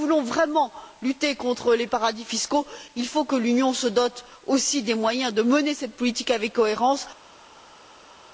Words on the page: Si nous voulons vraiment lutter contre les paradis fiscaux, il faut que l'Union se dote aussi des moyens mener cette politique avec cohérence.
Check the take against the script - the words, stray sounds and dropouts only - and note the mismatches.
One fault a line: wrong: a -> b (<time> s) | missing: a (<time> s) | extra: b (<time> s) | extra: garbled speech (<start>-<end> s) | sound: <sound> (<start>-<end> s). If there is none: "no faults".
extra: de (5.3 s)